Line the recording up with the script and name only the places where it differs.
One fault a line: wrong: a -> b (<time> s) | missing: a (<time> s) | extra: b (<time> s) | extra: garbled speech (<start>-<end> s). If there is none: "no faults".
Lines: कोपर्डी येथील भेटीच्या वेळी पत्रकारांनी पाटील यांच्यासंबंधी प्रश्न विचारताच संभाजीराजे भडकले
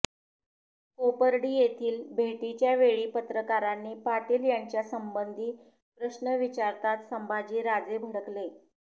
no faults